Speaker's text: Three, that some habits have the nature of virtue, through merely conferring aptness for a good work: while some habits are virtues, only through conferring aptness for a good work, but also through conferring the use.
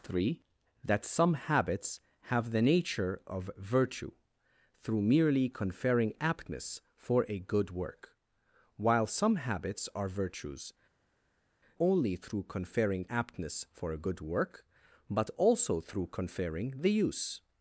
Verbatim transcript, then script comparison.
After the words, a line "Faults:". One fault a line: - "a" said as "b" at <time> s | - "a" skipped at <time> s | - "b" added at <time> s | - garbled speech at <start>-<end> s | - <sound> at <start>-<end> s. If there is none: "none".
Three, that some habits have the nature of virtue, through merely conferring aptness for a good work: while some habits are virtues, only through conferring aptness for a good work, but also through conferring the use.
Faults:
none